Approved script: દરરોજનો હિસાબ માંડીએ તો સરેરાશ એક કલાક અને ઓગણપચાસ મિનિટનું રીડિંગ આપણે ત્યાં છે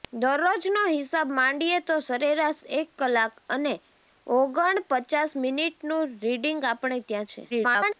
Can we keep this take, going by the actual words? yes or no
no